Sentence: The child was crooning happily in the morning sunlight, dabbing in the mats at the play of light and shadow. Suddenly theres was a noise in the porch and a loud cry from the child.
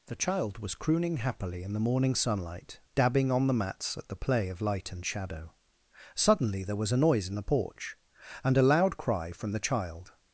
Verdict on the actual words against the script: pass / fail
fail